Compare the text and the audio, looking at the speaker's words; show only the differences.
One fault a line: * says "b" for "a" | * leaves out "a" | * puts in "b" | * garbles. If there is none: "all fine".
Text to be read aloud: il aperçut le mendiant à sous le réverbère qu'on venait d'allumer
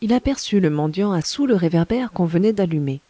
all fine